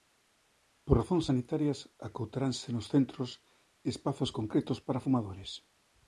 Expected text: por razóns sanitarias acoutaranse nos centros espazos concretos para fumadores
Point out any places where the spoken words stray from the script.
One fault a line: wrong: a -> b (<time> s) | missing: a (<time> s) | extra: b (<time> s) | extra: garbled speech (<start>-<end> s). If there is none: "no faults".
no faults